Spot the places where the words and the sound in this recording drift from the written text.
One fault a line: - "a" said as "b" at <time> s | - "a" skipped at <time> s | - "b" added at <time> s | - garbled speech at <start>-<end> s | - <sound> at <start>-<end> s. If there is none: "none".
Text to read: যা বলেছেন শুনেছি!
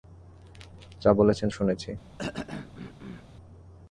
- throat clearing at 2.2-3.3 s